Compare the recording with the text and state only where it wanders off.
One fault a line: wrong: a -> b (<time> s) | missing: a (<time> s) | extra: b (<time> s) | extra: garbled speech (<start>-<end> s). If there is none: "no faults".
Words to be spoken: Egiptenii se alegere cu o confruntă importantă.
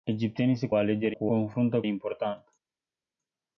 no faults